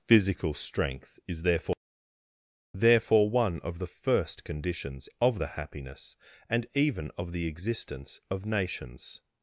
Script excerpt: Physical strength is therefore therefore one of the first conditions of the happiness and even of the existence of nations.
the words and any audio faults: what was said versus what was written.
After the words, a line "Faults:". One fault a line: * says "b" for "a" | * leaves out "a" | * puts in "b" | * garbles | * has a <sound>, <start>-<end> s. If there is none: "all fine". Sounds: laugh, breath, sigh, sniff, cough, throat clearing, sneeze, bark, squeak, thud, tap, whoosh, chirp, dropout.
Physical strength is therefore therefore one of the first conditions of the happiness and even of the existence of nations.
Faults:
all fine